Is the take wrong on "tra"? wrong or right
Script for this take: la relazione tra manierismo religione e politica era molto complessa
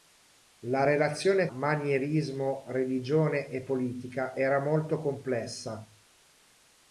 wrong